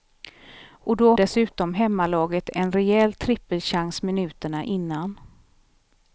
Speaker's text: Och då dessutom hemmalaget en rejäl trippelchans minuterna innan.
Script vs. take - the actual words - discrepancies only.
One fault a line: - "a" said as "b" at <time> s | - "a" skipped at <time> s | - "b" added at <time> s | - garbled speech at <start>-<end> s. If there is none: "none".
none